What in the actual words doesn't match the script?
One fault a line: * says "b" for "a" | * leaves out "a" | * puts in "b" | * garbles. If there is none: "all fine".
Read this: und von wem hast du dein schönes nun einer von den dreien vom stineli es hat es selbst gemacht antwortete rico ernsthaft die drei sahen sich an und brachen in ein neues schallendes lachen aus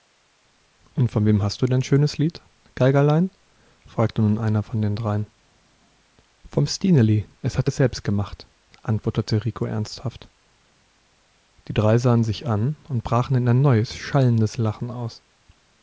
* puts in "lied geigerlein fragte"